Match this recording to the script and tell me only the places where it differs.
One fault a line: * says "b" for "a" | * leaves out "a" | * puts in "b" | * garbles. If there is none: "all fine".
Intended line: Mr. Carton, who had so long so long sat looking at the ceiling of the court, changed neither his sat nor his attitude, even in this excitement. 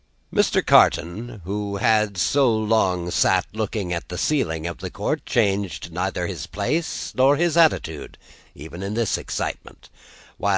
* leaves out "so long"
* says "place" for "sat"